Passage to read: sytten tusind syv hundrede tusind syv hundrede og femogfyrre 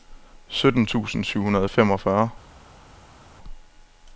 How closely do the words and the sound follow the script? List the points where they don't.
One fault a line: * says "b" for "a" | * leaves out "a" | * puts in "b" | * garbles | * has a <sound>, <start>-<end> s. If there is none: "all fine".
* leaves out "tusind syv hundrede"